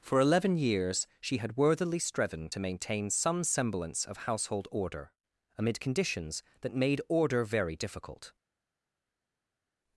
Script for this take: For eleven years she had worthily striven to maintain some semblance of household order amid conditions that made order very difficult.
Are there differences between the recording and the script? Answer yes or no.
no